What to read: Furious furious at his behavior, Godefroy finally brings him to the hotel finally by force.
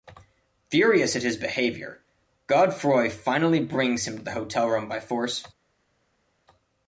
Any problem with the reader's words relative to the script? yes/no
yes